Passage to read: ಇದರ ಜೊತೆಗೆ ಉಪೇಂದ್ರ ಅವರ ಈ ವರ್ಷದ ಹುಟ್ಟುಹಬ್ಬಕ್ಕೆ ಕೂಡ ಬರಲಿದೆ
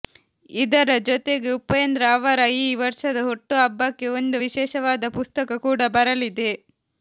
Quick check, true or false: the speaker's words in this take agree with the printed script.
false